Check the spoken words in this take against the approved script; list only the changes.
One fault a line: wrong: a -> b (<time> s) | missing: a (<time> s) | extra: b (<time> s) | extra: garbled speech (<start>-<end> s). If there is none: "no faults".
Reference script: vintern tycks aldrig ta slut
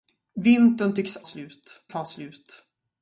wrong: aldrig -> slut (1.2 s)